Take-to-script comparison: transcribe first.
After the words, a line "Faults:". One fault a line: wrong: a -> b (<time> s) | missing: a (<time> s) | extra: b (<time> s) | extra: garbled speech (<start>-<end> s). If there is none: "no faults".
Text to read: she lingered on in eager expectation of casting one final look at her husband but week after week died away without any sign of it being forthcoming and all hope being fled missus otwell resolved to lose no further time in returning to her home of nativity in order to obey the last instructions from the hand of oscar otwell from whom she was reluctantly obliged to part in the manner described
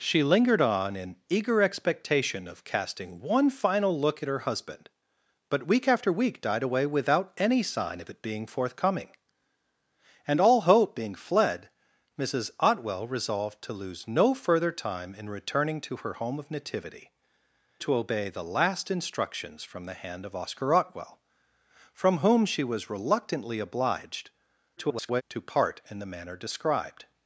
she lingered on in eager expectation of casting one final look at her husband but week after week died away without any sign of it being forthcoming and all hope being fled missus otwell resolved to lose no further time in returning to her home of nativity to obey the last instructions from the hand of oscar otwell from whom she was reluctantly obliged [garbled] to part in the manner described
Faults:
missing: in order (17.1 s)
extra: garbled speech (24.8-25.2 s)